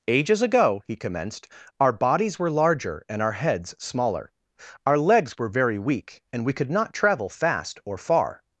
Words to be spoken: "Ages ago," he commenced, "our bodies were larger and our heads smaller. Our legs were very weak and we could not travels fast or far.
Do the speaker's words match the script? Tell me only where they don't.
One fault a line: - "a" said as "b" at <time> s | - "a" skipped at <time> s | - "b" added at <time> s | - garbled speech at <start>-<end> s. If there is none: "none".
- "travels" said as "travel" at 6.9 s